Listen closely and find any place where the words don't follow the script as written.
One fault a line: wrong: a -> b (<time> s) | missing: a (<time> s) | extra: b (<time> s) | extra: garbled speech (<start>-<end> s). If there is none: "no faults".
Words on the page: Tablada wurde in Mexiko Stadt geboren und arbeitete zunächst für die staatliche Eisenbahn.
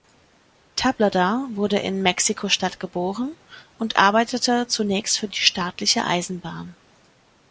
no faults